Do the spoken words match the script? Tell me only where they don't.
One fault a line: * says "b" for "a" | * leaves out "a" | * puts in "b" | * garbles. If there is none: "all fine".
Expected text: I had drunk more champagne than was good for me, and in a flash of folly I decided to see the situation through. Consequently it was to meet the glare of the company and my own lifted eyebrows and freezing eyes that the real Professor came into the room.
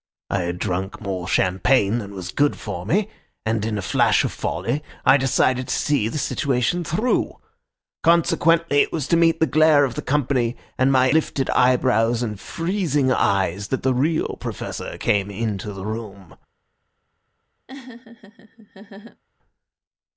* leaves out "own"